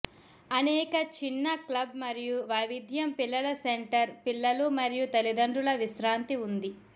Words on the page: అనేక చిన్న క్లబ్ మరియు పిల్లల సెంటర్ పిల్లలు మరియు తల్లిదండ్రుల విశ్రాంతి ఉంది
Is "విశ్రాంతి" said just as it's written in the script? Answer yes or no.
yes